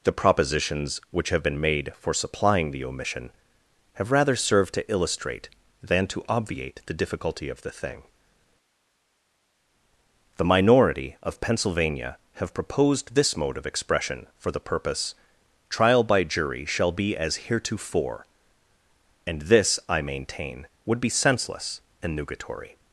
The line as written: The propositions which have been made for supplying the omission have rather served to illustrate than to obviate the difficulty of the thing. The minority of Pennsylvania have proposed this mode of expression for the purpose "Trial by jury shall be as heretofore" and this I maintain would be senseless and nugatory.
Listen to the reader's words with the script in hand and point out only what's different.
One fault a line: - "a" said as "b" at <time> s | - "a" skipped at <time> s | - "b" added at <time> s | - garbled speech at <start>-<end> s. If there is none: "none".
none